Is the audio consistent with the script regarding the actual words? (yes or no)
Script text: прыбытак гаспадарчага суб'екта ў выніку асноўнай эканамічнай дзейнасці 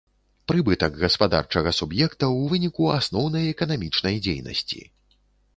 yes